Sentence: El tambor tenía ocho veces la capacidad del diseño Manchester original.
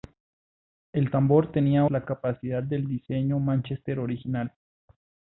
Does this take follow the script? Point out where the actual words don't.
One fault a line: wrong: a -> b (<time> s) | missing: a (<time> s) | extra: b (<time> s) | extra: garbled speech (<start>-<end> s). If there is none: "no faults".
missing: ocho veces (1.9 s)